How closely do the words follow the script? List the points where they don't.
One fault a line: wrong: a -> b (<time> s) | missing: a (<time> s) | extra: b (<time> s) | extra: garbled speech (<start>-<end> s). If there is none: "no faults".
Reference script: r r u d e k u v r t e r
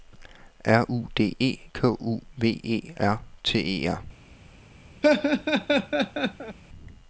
missing: r (0.9 s)
extra: e (2.6 s)